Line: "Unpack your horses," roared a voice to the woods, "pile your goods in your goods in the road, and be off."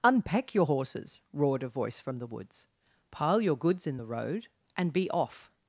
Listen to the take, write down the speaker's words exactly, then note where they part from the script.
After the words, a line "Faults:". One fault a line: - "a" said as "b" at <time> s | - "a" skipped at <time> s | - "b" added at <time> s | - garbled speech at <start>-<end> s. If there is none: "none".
"Unpack your horses," roared a voice from the woods, "pile your goods in the road, and be off."
Faults:
- "to" said as "from" at 2.0 s
- "your goods in" skipped at 4.0 s